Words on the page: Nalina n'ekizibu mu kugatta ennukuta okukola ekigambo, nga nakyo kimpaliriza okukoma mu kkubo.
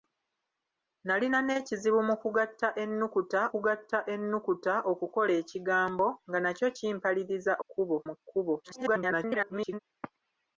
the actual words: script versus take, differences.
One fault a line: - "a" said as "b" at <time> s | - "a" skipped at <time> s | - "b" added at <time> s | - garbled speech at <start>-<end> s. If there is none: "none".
- "kugatta ennukuta" added at 3.5 s
- "okukoma" said as "kkubo" at 7.6 s
- garbled speech at 8.6-9.8 s